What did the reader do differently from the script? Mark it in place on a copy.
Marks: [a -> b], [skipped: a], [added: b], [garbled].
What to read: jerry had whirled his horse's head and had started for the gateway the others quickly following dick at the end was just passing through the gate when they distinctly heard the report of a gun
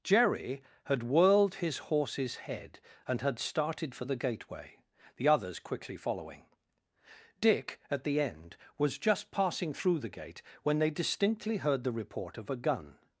jerry had whirled his horse's head and had started for the gateway the others quickly following dick at the end was just passing through the gate when they distinctly heard the report of a gun